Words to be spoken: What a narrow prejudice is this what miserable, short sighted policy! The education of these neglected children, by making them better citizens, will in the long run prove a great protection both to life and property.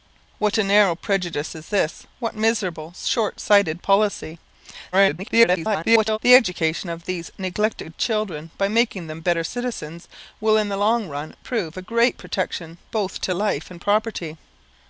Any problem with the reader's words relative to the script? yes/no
yes